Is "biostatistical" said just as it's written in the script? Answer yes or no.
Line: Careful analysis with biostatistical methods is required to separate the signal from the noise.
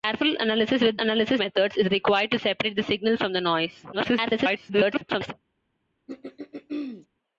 no